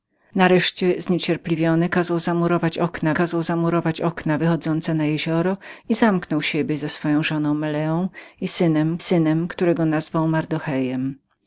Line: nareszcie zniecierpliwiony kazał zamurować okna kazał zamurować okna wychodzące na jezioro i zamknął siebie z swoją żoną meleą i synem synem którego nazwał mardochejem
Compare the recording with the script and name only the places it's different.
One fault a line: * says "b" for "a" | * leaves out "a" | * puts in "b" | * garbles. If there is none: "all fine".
all fine